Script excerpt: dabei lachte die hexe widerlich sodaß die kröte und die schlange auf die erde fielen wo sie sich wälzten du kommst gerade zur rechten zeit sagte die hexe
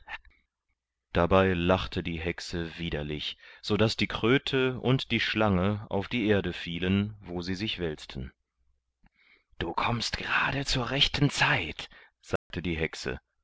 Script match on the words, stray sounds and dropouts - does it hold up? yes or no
no